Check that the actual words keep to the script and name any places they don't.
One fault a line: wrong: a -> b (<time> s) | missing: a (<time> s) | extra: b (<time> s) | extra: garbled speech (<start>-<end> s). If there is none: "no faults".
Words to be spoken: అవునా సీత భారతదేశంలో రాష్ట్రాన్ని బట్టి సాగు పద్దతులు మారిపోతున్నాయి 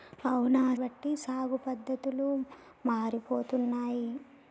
missing: సీత భారతదేశంలో రాష్ట్రాన్ని (0.6 s)